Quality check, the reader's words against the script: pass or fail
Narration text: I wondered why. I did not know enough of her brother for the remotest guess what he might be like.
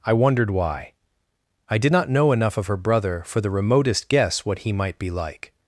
pass